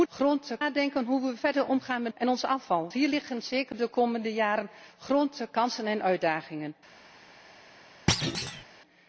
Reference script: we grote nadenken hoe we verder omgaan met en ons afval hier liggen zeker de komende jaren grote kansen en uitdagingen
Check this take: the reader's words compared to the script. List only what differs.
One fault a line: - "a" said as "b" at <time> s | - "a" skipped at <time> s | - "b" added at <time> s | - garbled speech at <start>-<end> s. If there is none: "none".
none